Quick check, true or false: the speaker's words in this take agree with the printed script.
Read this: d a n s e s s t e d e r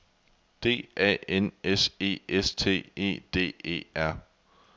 false